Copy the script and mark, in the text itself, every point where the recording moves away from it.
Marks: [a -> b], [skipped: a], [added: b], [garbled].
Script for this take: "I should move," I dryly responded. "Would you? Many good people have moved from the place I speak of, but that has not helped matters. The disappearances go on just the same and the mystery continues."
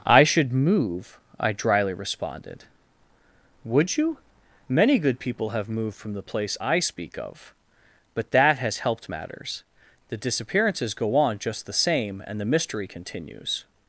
"I should move," I dryly responded. "Would you? Many good people have moved from the place I speak of, but that has [skipped: not] helped matters. The disappearances go on just the same and the mystery continues."